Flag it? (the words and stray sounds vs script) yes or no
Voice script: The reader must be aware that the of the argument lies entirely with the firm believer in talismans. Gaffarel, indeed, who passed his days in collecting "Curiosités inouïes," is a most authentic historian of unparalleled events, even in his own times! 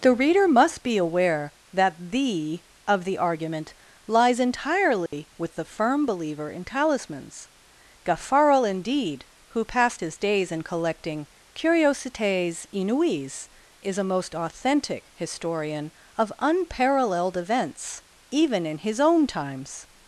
yes